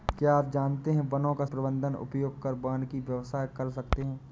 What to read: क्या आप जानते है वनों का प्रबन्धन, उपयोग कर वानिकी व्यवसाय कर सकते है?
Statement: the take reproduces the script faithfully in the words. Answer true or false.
true